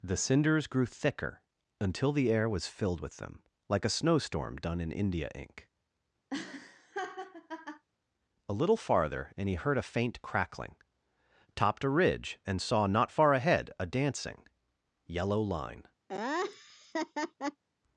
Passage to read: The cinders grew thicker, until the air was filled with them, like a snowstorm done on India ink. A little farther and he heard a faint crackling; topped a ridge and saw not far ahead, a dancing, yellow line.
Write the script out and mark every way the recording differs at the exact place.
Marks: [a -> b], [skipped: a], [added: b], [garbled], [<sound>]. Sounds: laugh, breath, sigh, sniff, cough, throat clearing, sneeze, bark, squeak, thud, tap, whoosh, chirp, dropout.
The cinders grew thicker, until the air was filled with them, like a snowstorm done [on -> in] India ink. [laugh] A little farther and he heard a faint crackling; topped a ridge and saw not far ahead, a dancing, yellow line. [laugh]